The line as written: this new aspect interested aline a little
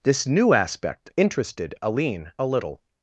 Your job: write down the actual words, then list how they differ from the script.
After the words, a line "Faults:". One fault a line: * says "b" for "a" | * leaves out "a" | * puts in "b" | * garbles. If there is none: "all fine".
this new aspect interested aline a little
Faults:
all fine